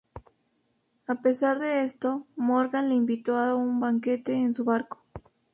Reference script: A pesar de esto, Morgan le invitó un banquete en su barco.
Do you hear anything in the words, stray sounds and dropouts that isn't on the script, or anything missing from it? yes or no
yes